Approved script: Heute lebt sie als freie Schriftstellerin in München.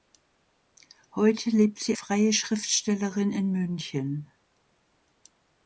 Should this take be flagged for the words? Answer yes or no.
yes